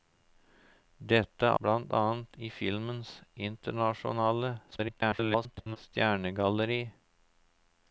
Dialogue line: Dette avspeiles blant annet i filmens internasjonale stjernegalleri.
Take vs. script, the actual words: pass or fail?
fail